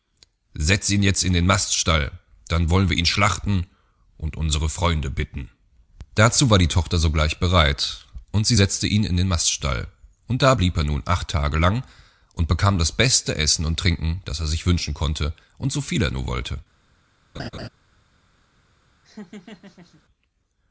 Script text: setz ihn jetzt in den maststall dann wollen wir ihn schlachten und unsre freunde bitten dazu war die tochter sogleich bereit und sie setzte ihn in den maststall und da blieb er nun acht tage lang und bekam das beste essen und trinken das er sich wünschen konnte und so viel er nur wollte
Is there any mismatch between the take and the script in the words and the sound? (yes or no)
yes